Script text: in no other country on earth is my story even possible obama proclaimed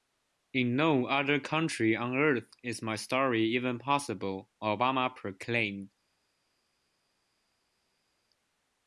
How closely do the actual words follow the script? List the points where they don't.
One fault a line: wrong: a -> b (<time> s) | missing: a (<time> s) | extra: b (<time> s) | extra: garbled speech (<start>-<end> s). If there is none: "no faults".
no faults